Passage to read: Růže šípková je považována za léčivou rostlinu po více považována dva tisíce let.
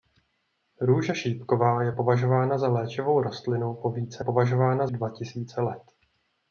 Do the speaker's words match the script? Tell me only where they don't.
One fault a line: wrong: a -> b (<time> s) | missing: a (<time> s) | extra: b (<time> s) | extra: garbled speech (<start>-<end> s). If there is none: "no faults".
no faults